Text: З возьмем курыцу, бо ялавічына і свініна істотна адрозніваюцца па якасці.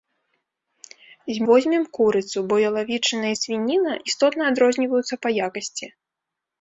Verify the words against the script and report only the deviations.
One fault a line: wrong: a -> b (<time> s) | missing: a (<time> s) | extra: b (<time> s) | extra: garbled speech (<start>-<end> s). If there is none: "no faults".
no faults